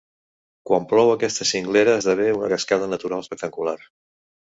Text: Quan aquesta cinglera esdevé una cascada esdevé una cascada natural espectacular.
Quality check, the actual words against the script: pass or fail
fail